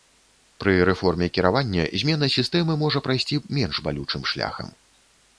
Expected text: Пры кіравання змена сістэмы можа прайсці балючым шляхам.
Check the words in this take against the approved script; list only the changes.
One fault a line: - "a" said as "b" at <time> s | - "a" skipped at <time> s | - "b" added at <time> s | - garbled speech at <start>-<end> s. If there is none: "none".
- "рэформе" added at 0.9 s
- "менш" added at 3.6 s